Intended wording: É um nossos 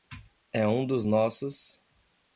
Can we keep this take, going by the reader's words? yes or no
no